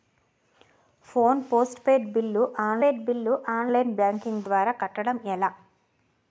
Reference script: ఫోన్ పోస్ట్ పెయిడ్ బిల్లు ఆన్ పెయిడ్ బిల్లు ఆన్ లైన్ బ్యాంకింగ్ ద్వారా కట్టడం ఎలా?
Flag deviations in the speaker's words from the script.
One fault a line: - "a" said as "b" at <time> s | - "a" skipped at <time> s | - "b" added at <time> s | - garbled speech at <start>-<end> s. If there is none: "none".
none